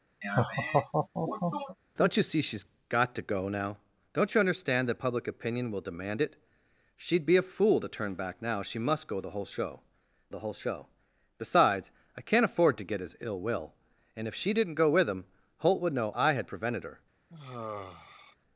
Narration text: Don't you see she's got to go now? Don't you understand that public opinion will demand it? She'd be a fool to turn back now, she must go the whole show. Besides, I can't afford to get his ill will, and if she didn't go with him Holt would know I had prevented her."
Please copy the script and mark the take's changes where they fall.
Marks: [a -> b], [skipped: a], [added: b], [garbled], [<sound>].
[laugh] Don't you see she's got to go now? Don't you understand that public opinion will demand it? She'd be a fool to turn back now, she must go the whole show. [added: the whole show] Besides, I can't afford to get his ill will, and if she didn't go with him Holt would know I had prevented her." [sigh]